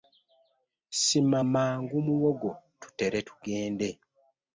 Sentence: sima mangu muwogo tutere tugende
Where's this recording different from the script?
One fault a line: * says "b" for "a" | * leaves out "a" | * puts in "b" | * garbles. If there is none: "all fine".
all fine